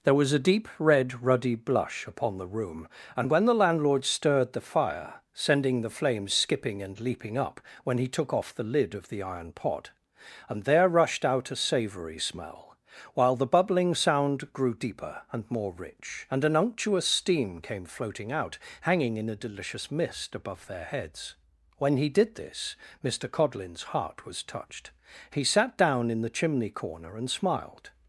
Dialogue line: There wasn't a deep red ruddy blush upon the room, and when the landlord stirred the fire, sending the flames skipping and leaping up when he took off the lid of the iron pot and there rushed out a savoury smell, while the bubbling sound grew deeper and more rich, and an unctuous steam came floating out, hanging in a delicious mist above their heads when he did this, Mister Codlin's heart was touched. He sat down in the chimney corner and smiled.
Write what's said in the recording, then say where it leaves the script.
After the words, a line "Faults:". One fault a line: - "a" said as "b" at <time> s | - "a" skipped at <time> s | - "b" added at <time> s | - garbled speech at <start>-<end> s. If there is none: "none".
There was a deep red ruddy blush upon the room, and when the landlord stirred the fire, sending the flames skipping and leaping up when he took off the lid of the iron pot and there rushed out a savoury smell, while the bubbling sound grew deeper and more rich, and an unctuous steam came floating out, hanging in a delicious mist above their heads when he did this, Mister Codlin's heart was touched. He sat down in the chimney corner and smiled.
Faults:
- "wasn't" said as "was" at 0.1 s